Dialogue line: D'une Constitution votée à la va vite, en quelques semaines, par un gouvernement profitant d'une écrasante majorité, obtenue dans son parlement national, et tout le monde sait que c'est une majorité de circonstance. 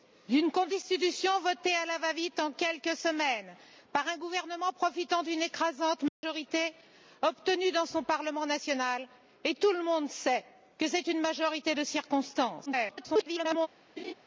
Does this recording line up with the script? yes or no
no